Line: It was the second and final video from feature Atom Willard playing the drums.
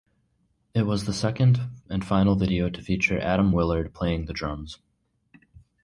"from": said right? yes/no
no